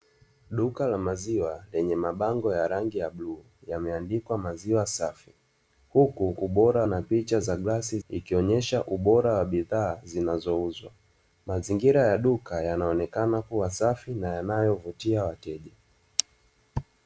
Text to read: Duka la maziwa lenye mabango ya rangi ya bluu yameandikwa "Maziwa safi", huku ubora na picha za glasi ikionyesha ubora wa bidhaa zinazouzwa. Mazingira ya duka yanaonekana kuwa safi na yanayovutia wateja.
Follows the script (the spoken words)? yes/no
yes